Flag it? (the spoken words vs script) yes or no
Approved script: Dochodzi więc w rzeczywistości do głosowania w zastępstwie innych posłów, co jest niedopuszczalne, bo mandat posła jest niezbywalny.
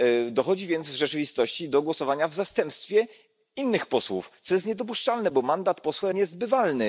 yes